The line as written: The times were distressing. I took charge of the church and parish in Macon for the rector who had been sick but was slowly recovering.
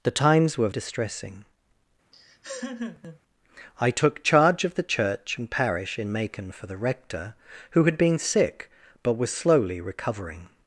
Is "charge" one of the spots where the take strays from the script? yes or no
no